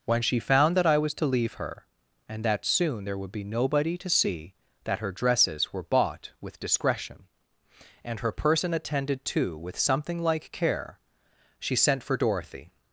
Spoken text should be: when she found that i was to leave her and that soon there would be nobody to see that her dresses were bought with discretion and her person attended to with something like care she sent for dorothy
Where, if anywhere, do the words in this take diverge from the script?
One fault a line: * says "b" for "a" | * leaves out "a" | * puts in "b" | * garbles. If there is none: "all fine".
all fine